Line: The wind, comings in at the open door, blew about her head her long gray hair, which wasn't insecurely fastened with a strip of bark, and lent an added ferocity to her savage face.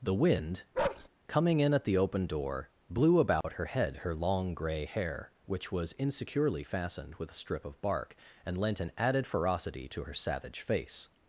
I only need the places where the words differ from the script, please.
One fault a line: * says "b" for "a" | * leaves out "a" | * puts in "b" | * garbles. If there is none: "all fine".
* says "coming" for "comings"
* says "was" for "wasn't"